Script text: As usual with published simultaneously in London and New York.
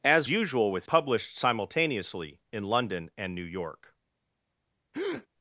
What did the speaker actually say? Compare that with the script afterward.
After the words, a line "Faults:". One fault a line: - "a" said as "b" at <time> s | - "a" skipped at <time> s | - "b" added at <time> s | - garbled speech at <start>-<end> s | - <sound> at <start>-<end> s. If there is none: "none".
As usual with published simultaneously in London and New York.
Faults:
- breath at 4.9-5.3 s